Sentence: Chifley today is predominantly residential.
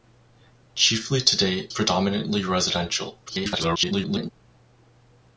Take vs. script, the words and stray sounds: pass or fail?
fail